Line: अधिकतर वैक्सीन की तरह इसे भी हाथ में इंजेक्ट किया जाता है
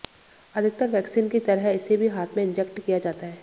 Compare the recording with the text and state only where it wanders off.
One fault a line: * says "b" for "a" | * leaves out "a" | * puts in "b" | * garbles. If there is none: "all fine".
all fine